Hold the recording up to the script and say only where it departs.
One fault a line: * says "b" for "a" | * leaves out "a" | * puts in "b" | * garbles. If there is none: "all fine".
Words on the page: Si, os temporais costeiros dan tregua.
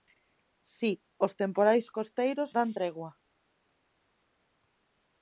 all fine